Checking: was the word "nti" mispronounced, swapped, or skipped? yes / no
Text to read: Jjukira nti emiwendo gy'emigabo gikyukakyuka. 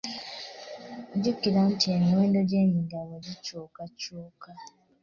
no